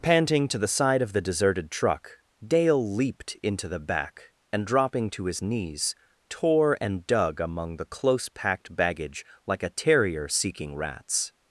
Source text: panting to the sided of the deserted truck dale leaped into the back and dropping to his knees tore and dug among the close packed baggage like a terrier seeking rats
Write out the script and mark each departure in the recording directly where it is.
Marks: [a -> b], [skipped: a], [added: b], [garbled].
panting to the [sided -> side] of the deserted truck dale leaped into the back and dropping to his knees tore and dug among the close packed baggage like a terrier seeking rats